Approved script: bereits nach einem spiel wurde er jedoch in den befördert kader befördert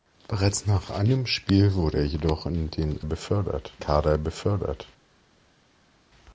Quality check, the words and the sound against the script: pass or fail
pass